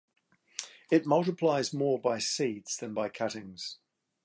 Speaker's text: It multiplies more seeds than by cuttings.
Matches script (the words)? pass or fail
fail